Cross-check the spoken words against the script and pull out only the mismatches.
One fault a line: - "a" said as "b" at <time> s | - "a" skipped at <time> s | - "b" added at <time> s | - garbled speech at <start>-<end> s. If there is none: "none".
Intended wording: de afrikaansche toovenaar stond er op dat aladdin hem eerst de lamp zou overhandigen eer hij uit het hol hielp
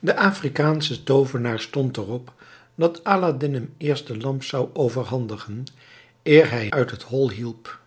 none